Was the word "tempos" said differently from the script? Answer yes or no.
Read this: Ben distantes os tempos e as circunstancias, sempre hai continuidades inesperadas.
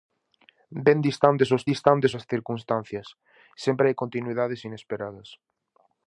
yes